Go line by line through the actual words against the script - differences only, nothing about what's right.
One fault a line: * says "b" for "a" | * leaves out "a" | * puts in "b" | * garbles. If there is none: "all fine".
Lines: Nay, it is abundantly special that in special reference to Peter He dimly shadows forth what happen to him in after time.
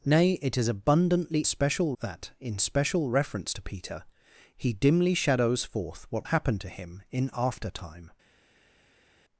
all fine